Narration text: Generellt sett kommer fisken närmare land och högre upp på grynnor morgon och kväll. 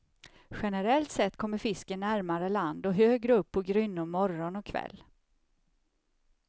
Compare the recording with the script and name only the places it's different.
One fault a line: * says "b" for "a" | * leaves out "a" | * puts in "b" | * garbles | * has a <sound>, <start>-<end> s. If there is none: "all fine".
all fine